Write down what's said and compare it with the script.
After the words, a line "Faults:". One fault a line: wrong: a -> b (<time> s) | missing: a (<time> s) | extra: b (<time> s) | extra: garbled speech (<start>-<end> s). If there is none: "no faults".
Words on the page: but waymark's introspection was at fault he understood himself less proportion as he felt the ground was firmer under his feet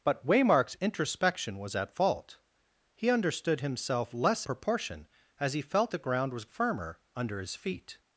but waymark's introspection was at fault he understood himself less proportion as he felt the ground was firmer under his feet
Faults:
no faults